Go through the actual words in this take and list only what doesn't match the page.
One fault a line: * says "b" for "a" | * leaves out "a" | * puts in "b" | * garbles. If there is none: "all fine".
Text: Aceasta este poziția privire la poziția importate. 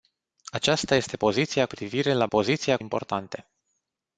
all fine